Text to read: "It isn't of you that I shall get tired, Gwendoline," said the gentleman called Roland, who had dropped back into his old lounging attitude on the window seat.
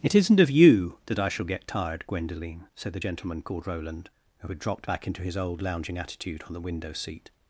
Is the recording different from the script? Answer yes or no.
no